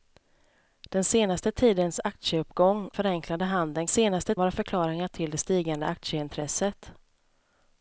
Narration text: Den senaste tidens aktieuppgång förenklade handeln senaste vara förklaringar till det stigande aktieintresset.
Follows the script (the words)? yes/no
yes